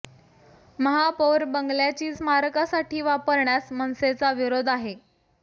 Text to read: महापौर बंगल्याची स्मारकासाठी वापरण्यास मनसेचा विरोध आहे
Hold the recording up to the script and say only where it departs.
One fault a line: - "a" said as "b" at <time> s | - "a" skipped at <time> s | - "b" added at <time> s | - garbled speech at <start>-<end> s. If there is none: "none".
none